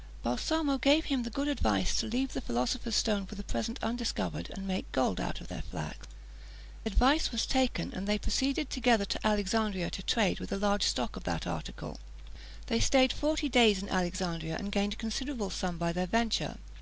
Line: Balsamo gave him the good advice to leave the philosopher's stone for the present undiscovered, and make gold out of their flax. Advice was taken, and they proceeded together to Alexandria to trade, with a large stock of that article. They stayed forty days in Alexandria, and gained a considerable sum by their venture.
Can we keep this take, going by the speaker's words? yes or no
yes